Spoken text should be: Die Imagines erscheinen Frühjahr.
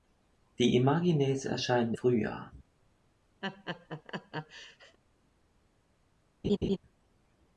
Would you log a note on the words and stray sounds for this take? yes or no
yes